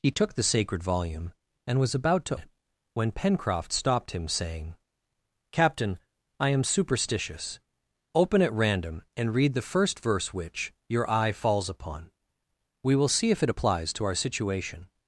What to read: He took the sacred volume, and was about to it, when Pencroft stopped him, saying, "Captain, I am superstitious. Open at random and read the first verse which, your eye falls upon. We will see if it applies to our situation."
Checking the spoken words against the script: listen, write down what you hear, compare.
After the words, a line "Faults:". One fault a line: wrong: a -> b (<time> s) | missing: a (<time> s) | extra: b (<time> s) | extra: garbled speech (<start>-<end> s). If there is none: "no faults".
He took the sacred volume, and was about to it, when Pencroft stopped him, saying, "Captain, I am superstitious. Open at random and read the first verse which, your eye falls upon. We will see if it applies to our situation."
Faults:
no faults